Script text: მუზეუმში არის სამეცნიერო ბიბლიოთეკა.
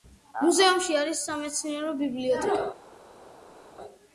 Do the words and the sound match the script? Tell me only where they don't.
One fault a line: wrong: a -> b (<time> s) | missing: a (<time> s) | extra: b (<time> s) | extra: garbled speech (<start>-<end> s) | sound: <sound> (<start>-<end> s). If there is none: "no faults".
no faults